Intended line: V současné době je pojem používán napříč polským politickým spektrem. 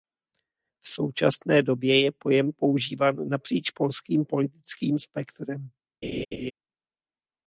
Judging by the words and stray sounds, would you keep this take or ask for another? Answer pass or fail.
fail